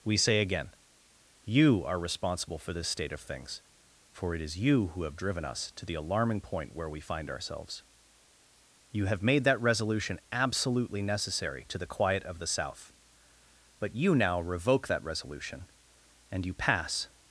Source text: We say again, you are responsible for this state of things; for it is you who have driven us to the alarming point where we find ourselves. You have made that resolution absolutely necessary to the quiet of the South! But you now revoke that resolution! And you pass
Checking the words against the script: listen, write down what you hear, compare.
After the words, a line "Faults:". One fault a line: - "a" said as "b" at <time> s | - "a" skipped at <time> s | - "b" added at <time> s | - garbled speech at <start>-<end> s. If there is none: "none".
We say again, you are responsible for this state of things; for it is you who have driven us to the alarming point where we find ourselves. You have made that resolution absolutely necessary to the quiet of the South! But you now revoke that resolution! And you pass
Faults:
none